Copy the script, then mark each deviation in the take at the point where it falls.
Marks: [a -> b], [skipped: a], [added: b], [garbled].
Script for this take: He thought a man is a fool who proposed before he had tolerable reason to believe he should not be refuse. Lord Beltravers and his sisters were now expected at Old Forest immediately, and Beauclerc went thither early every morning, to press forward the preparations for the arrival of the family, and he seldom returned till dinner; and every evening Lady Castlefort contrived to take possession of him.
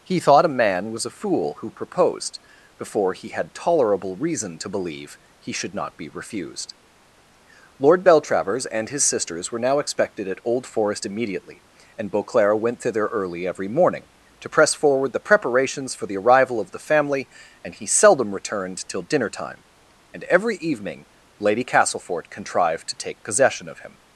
He thought a man [is -> was] a fool who proposed before he had tolerable reason to believe he should not be [refuse. -> refused] Lord Beltravers and his sisters were now expected at Old Forest immediately, and Beauclerc went thither early every morning, to press forward the preparations for the arrival of the family, and he seldom returned till dinner; [added: time] and every evening Lady Castlefort contrived to take possession of him.